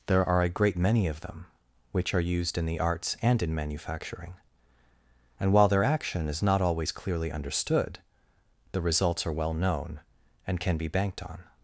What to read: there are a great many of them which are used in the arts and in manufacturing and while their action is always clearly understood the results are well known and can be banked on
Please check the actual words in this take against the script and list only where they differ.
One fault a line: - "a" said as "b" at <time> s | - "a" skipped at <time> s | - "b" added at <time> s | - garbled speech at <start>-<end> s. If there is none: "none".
- "not" added at 6.4 s